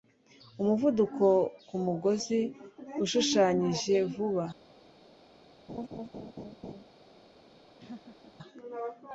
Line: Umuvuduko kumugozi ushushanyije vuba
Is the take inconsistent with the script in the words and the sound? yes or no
yes